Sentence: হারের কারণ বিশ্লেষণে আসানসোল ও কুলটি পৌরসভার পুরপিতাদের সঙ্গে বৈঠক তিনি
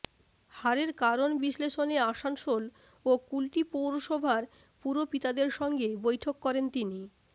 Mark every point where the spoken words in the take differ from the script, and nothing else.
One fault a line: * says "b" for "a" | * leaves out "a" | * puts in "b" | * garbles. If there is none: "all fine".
* puts in "করেন"